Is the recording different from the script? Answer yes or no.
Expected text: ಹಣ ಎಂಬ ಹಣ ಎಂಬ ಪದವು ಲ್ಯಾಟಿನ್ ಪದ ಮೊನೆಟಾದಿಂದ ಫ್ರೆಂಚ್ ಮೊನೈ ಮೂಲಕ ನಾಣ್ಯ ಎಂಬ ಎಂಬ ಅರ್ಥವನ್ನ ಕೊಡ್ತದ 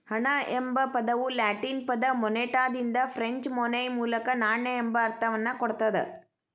yes